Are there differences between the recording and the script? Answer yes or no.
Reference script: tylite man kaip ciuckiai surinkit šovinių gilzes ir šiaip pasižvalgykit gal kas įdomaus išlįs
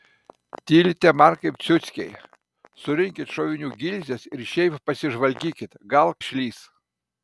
yes